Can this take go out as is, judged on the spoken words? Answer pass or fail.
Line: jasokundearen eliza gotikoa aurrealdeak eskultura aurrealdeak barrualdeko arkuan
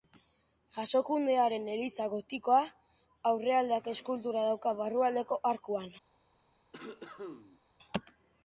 fail